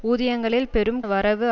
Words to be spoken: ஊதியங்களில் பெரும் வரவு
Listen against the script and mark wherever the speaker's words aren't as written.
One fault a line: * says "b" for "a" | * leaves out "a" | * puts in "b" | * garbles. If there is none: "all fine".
all fine